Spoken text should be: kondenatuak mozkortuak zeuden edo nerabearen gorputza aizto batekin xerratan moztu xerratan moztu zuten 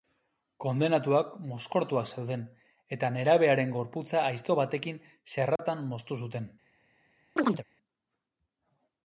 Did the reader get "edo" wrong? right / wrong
wrong